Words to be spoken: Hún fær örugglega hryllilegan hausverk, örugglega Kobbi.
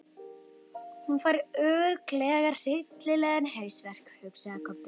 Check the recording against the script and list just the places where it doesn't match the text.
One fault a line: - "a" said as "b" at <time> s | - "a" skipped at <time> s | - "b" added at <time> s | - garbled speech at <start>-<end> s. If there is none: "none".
- "örugglega" said as "hugsaði" at 4.2 s